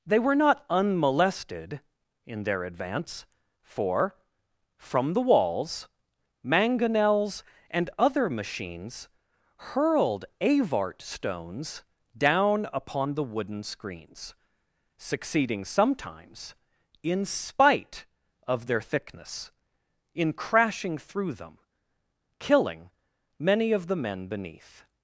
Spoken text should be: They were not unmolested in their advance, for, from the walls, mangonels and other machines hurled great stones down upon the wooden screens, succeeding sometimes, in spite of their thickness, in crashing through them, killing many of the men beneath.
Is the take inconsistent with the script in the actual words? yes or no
yes